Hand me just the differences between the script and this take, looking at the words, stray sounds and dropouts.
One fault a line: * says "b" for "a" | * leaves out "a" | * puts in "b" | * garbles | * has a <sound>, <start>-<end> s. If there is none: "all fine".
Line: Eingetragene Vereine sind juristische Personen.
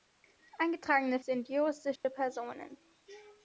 * leaves out "Vereine"
* has a dropout, 2.0-2.0 s